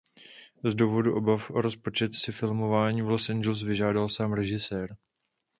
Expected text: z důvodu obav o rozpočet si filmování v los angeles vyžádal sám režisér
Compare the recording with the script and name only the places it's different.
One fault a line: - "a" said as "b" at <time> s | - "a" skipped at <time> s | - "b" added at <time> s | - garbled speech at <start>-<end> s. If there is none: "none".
none